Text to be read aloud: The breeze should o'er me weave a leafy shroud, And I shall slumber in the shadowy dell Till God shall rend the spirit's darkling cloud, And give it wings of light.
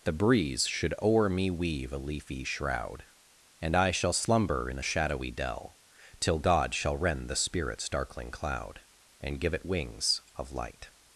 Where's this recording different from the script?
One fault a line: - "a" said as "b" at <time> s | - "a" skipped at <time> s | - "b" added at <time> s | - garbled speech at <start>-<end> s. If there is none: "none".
none